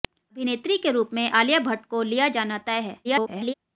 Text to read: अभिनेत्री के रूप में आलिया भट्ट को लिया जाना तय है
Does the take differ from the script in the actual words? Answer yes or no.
yes